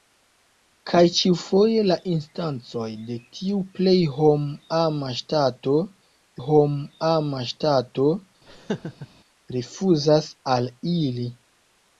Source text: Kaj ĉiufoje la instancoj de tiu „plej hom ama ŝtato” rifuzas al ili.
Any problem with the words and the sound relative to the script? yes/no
yes